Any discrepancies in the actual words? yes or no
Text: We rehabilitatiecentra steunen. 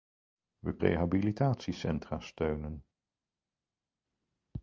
no